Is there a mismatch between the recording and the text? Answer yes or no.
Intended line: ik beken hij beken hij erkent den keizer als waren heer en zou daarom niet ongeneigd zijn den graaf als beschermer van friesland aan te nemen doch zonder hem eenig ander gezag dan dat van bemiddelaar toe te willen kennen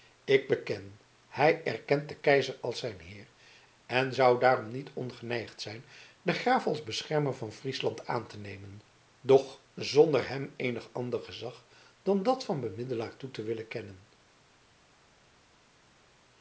yes